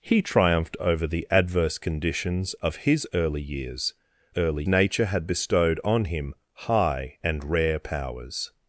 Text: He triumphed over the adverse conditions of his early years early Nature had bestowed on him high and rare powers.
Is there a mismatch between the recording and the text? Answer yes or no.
no